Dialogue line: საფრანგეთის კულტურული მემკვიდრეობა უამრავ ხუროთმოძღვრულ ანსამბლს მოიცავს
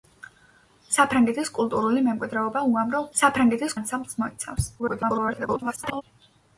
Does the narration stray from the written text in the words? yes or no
yes